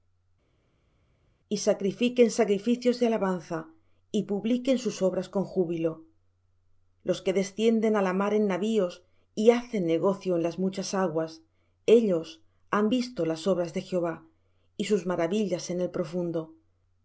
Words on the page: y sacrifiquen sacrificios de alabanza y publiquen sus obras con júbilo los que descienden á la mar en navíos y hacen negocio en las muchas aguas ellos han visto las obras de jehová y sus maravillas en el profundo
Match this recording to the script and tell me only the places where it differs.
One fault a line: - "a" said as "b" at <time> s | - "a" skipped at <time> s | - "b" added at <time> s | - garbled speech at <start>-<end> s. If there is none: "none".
none